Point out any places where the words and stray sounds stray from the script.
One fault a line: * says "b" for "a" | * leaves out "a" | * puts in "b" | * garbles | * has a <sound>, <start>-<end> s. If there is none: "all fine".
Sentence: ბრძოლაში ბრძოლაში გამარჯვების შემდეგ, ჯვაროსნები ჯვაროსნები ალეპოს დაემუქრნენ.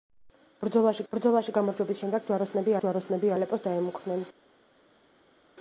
all fine